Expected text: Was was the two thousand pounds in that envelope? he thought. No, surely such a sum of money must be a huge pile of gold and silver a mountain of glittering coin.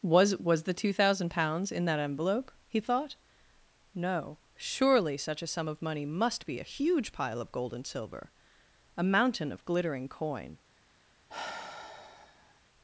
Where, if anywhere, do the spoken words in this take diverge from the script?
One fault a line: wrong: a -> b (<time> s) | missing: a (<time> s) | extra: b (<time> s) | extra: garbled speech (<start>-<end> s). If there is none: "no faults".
no faults